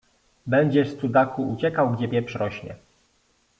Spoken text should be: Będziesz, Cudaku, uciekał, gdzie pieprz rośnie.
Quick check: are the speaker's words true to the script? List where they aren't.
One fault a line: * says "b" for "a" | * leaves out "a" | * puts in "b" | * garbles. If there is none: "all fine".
all fine